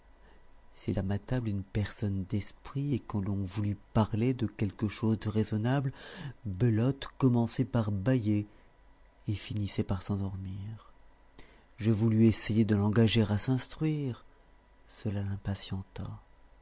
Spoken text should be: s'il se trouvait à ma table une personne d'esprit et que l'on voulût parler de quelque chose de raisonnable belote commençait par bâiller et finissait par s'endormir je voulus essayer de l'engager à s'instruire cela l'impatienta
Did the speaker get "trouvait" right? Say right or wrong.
wrong